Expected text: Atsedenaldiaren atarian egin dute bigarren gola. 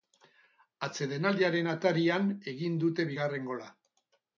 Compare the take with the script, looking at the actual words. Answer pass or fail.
pass